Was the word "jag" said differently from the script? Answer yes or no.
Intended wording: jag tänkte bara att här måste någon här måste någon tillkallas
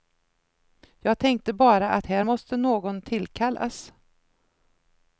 no